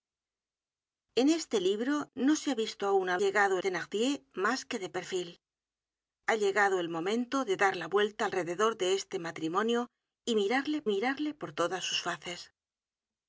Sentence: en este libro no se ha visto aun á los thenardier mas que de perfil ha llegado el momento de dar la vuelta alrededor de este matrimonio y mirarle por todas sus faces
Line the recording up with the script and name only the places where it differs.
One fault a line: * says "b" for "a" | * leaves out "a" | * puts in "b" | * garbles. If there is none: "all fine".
* says "llegado" for "los"
* puts in "mirarle"